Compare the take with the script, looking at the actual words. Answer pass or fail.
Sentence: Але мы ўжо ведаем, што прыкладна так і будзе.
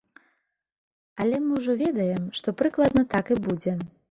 pass